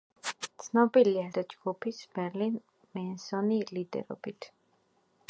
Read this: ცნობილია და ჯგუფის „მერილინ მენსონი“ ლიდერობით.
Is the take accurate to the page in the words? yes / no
yes